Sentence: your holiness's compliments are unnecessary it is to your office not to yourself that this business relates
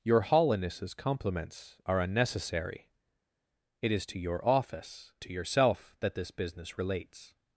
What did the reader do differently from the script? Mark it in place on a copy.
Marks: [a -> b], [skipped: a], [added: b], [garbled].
your holiness's compliments are unnecessary it is to your office [skipped: not] to yourself that this business relates